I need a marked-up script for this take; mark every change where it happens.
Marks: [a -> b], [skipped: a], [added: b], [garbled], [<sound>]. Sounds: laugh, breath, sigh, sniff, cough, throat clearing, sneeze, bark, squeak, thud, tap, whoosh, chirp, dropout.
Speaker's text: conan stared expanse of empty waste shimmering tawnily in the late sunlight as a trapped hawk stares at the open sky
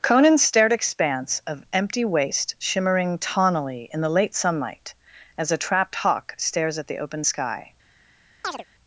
conan stared expanse of empty waste shimmering tawnily in the late sunlight as a trapped hawk stares at the open sky [chirp]